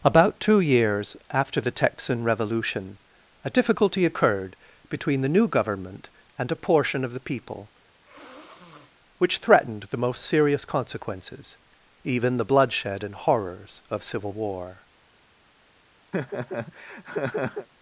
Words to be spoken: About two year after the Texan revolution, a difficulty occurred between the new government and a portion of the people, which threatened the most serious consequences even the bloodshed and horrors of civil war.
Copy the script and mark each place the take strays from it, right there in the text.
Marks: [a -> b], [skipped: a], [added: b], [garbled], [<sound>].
About two [year -> years] after the Texan revolution, a difficulty occurred between the new government and a portion of the people, [sniff] which threatened the most serious consequences even the bloodshed and horrors of civil war. [laugh]